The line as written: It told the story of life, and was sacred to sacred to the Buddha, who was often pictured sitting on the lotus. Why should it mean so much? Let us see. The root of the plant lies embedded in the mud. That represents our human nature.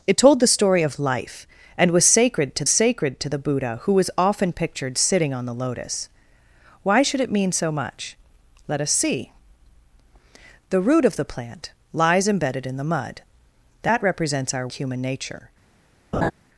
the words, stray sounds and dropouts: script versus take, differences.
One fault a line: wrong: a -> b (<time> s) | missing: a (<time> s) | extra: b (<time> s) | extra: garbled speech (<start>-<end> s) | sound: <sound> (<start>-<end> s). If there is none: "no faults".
sound: laugh (16.1-16.3 s)